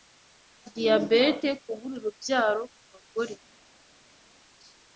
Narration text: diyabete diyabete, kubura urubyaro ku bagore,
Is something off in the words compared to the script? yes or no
yes